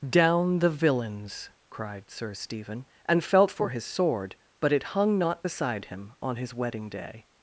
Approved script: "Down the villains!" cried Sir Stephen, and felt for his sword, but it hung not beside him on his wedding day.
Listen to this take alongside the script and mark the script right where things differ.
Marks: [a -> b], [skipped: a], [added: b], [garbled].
"Down the villains!" cried Sir Stephen, and felt for his sword, but it hung not beside him on his wedding day.